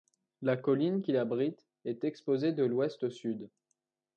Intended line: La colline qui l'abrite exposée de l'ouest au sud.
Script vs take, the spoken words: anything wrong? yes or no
yes